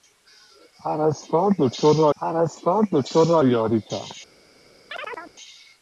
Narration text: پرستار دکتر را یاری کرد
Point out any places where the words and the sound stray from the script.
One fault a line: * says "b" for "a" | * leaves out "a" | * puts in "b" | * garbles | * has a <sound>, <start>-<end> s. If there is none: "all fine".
* puts in "پرستار دکتر را"
* has a chirp, 4.9-5.3 s